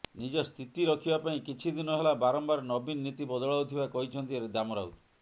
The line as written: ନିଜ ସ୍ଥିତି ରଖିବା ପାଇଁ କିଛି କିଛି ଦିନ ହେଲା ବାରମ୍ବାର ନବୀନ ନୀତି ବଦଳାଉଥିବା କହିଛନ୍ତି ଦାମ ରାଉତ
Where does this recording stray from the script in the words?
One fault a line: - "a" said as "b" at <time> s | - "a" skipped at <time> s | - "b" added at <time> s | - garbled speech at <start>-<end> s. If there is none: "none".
- "କିଛି" skipped at 1.8 s